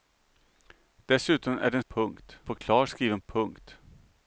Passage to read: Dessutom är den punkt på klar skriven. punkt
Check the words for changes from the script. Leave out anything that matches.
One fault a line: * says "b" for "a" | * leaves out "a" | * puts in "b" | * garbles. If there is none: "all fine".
all fine